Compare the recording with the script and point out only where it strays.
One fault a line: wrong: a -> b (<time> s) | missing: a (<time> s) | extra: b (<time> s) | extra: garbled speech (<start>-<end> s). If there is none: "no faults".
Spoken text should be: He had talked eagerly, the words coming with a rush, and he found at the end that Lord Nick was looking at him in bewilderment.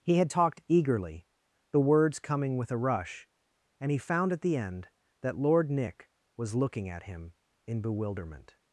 no faults